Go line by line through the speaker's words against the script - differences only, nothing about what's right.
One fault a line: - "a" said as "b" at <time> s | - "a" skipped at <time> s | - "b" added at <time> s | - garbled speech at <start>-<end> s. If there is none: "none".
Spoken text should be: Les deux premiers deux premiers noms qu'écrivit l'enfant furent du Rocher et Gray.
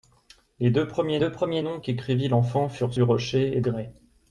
none